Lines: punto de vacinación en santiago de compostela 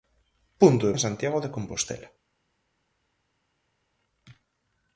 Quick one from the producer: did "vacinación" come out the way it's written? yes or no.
no